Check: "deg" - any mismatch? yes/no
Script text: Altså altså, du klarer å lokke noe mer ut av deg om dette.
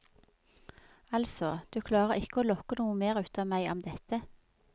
yes